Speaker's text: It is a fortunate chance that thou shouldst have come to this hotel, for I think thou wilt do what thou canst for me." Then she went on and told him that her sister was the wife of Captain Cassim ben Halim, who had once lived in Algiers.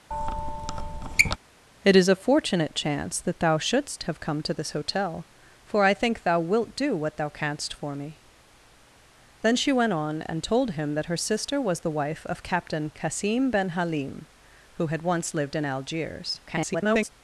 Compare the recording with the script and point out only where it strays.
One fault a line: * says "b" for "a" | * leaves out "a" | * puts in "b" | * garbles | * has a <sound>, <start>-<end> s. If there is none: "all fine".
* has a squeak, 0.1-1.4 s
* garbles